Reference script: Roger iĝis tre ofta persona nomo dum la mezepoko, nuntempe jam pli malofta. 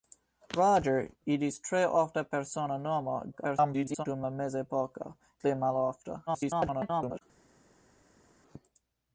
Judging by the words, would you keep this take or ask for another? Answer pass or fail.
fail